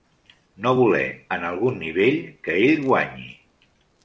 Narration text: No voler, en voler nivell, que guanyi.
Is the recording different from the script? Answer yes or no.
yes